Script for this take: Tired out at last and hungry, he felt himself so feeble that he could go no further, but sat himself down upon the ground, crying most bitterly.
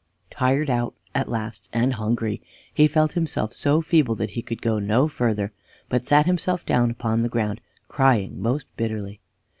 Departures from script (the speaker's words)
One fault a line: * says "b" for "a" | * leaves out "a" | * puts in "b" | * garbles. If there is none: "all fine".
all fine